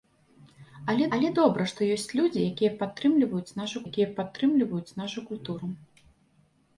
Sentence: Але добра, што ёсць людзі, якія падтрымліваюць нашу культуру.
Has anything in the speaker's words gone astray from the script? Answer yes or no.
yes